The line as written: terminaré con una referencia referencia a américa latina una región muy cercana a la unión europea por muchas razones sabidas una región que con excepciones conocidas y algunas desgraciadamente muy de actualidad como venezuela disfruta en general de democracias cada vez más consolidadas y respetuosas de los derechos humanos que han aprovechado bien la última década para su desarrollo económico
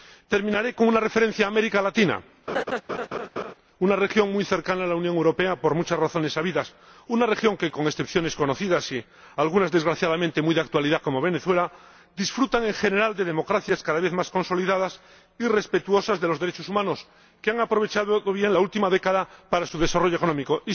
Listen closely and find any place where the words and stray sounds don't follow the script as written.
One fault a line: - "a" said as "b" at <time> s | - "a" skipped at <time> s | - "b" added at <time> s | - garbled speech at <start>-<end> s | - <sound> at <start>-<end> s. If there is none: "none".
- "referencia" skipped at 1.4 s
- laugh at 2.5-3.5 s